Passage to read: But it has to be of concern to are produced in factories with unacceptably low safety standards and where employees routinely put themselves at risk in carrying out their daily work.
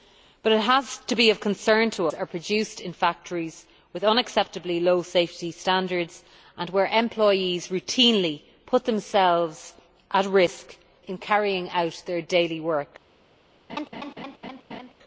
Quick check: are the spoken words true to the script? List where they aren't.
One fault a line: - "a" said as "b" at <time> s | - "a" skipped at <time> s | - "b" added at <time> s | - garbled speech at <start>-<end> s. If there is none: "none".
none